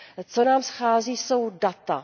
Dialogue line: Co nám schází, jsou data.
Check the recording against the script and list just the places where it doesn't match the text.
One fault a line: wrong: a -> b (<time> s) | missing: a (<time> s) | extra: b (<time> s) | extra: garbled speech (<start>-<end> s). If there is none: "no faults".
no faults